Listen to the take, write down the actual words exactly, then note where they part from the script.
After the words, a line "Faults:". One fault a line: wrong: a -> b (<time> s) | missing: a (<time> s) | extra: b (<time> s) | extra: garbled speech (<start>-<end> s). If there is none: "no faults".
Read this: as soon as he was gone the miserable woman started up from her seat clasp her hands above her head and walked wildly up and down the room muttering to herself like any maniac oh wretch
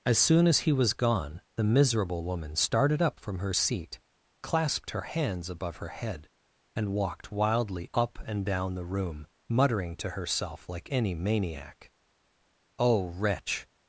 as soon as he was gone the miserable woman started up from her seat clasped her hands above her head and walked wildly up and down the room muttering to herself like any maniac oh wretch
Faults:
wrong: clasp -> clasped (4.4 s)